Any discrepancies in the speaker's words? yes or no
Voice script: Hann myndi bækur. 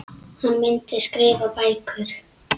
yes